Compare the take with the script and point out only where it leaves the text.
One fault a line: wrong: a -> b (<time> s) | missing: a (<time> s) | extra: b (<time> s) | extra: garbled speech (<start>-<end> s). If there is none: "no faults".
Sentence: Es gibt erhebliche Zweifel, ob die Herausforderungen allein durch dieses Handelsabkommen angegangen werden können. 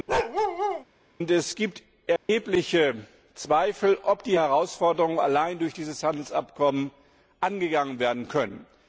no faults